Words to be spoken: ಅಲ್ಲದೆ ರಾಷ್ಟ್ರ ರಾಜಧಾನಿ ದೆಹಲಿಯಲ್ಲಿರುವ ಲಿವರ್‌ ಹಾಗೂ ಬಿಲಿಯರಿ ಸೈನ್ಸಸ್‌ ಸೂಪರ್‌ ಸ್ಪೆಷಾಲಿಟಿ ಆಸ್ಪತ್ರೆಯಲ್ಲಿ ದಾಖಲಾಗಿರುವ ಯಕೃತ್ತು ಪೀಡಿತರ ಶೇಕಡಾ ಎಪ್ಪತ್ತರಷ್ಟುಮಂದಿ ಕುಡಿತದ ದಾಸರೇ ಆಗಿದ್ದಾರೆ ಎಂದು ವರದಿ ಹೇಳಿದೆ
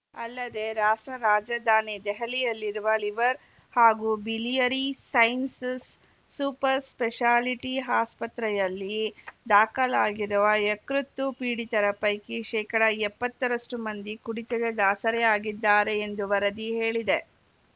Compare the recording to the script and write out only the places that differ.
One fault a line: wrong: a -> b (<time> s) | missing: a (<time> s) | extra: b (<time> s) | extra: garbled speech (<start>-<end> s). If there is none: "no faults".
extra: ಪೈಕಿ (12.0 s)